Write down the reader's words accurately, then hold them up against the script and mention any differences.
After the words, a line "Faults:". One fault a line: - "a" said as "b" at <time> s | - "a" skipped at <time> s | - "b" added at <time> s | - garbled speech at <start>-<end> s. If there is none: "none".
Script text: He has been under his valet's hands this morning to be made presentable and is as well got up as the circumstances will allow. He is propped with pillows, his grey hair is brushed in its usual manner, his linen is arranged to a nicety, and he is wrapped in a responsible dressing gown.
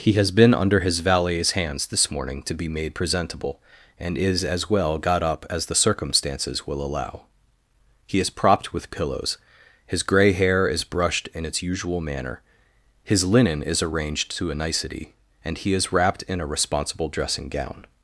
He has been under his valet's hands this morning to be made presentable and is as well got up as the circumstances will allow. He is propped with pillows, his grey hair is brushed in its usual manner, his linen is arranged to a nicety, and he is wrapped in a responsible dressing gown.
Faults:
none